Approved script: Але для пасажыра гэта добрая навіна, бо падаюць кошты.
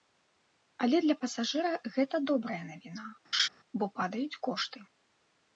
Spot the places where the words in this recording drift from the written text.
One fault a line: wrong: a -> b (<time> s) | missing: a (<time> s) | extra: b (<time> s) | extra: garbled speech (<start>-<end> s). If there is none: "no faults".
no faults